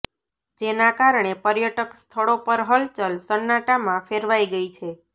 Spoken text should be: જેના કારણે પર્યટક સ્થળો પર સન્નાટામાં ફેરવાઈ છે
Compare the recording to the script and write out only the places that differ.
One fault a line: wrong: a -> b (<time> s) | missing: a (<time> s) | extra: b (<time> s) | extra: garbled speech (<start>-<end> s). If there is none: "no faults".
extra: હલચલ (2.7 s)
extra: ગઈ (4.5 s)